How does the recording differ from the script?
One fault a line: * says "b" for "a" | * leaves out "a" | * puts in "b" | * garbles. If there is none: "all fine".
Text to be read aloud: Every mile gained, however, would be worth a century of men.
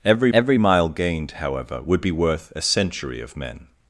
* puts in "every"